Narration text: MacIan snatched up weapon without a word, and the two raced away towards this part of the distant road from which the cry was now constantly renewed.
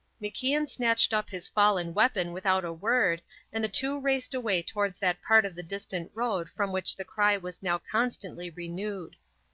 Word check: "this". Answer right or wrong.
wrong